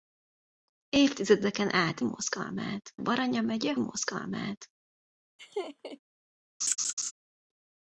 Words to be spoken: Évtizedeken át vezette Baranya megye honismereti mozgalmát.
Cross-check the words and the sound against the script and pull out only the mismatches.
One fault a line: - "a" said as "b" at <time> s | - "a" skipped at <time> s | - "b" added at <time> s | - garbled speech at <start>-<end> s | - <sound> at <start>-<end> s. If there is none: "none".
- "vezette" said as "mozgalmát" at 2.0 s
- "honismereti" skipped at 3.7 s
- laugh at 5.4-6.0 s
- laugh at 6.6-7.1 s